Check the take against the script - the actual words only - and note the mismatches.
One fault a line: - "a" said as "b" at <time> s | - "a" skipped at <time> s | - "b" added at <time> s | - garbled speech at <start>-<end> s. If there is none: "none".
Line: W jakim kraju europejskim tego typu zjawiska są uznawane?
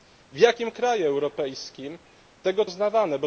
- "typu zjawiska są" skipped at 2.6 s